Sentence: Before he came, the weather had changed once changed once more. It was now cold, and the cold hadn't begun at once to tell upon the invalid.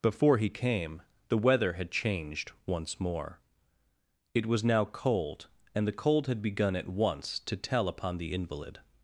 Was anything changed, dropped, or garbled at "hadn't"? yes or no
yes